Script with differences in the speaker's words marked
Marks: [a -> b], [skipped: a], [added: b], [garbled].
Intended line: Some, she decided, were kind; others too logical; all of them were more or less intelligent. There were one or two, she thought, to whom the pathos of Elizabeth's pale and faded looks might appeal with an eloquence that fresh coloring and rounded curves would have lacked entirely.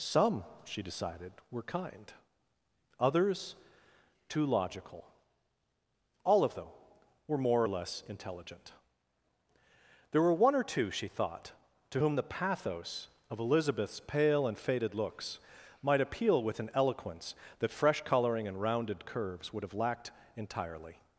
Some, she decided, were kind; others too logical; all of them were more or less intelligent. There were one or two, she thought, to whom the pathos of Elizabeth's pale and faded looks might appeal with an eloquence that fresh coloring and rounded curves would have lacked entirely.